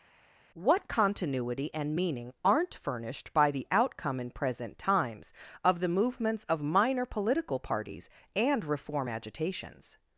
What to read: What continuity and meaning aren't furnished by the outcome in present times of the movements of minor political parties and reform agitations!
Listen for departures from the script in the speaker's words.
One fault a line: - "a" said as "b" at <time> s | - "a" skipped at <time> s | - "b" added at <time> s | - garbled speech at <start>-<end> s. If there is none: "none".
none